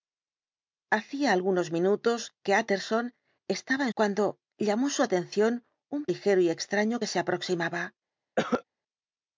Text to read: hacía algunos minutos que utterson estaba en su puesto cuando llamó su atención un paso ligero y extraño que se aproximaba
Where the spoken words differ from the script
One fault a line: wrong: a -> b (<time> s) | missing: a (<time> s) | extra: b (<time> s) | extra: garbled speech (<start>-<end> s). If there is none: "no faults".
missing: su puesto (3.9 s)
missing: paso (6.1 s)